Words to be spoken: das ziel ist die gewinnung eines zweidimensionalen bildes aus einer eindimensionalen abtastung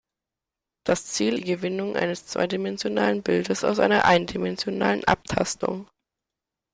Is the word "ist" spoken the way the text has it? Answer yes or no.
no